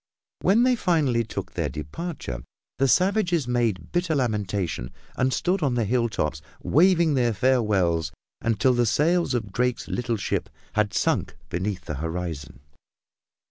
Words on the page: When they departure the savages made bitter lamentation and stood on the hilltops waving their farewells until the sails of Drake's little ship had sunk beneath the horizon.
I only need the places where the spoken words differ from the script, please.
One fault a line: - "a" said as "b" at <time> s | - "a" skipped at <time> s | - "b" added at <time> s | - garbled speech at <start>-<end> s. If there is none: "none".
- "finally took their" added at 0.8 s